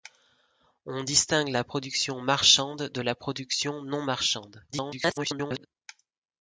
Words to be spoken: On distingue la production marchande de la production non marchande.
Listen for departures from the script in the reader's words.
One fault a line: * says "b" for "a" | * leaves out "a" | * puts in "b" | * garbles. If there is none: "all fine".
* garbles